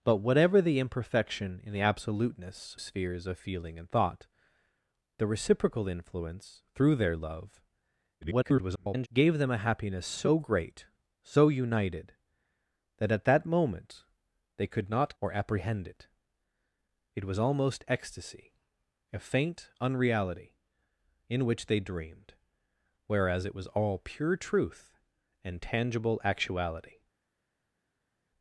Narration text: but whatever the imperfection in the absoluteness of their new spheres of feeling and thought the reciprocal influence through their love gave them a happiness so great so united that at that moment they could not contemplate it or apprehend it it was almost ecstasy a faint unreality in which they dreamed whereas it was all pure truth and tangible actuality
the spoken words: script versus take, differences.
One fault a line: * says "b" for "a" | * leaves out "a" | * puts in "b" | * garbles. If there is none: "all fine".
* leaves out "of their new"
* garbles
* leaves out "contemplate it"